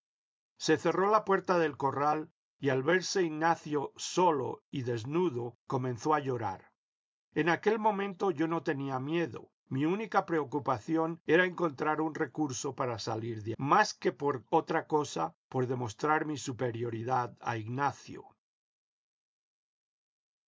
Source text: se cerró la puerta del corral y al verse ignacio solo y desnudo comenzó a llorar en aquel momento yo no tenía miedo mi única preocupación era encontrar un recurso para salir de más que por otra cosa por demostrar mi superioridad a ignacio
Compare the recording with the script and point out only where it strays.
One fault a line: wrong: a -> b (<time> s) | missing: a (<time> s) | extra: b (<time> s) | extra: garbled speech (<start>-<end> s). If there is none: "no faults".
no faults